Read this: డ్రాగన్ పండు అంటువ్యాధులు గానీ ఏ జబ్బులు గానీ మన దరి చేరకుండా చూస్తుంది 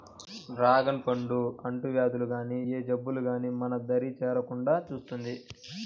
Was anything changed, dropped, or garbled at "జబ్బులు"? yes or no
no